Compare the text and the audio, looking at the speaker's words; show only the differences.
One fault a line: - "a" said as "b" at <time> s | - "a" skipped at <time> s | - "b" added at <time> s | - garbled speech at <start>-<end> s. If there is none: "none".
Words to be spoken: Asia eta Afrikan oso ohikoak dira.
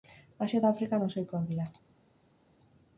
none